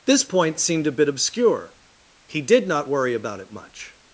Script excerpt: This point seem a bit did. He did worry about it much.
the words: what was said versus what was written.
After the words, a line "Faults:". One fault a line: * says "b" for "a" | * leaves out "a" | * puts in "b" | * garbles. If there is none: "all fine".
This point seemed a bit obscure. He did not worry about it much.
Faults:
* says "seemed" for "seem"
* says "obscure" for "did"
* puts in "not"